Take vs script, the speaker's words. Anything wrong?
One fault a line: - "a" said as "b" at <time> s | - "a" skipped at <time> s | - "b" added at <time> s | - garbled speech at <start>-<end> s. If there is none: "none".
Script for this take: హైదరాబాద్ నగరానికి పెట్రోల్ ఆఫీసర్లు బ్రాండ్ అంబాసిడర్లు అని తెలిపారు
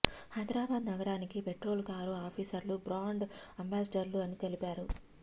- "కారు" added at 1.9 s